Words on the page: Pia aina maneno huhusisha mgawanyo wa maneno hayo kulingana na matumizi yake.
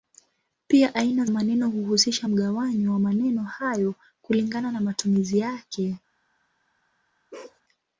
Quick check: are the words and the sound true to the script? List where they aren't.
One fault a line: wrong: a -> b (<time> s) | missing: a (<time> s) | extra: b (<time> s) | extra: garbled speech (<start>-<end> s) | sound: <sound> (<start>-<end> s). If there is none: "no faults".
sound: bark (7.3-7.6 s)